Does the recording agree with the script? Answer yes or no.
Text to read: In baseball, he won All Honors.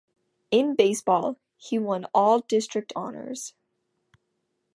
no